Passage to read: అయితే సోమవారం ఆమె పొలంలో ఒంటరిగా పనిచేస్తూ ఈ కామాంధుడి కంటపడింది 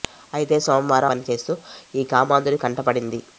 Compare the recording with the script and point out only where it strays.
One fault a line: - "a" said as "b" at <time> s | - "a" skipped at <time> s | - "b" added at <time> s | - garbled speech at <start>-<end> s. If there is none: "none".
- "ఆమె పొలంలో ఒంటరిగా" skipped at 1.1 s